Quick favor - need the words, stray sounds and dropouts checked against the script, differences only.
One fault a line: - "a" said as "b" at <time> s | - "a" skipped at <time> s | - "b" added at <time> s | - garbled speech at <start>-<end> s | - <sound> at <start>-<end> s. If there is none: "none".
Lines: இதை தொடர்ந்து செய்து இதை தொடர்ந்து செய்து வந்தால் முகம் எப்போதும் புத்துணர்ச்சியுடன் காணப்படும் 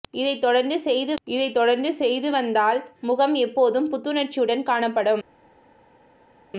none